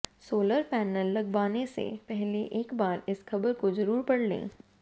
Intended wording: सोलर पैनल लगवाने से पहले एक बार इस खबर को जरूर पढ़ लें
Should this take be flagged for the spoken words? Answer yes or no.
no